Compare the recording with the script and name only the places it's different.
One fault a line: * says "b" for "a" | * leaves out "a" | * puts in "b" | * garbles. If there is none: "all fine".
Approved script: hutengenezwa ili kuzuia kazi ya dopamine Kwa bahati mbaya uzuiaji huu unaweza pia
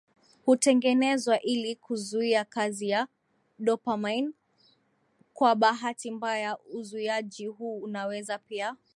all fine